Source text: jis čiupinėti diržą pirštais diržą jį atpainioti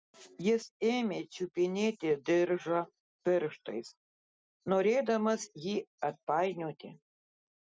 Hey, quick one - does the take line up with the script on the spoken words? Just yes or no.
no